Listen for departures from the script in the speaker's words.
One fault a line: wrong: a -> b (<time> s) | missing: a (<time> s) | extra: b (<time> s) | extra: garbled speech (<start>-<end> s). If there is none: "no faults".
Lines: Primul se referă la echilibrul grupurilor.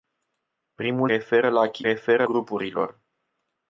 missing: se (1.1 s)
wrong: echilibrul -> referă (1.8 s)